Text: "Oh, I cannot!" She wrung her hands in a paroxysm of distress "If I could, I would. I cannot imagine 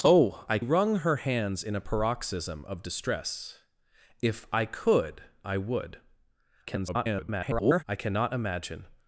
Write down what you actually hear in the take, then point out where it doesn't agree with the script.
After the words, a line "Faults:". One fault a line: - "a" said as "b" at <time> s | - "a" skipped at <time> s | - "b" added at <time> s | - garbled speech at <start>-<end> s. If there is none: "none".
"Oh, I wrung her hands in a paroxysm of distress "If I could, I would. [garbled] I cannot imagine
Faults:
- "cannot She" skipped at 0.6 s
- garbled speech at 6.7-7.8 s